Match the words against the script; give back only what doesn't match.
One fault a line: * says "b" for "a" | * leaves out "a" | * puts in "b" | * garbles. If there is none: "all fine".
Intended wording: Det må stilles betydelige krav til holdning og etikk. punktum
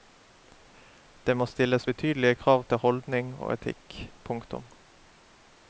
all fine